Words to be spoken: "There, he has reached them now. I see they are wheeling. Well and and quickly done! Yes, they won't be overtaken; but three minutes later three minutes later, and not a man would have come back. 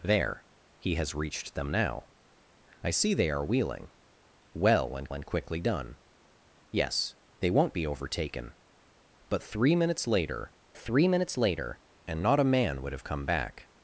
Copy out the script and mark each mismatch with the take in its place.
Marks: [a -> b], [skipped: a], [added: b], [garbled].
"There, he has reached them now. I see they are wheeling. Well and and quickly done! Yes, they won't be overtaken; but three minutes later three minutes later, and not a man would have come back.